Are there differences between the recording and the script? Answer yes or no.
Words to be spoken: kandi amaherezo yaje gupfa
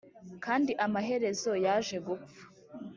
no